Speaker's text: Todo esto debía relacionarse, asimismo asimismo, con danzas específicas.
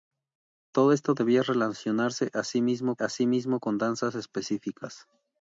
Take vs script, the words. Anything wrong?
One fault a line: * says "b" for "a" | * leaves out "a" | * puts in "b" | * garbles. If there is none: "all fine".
all fine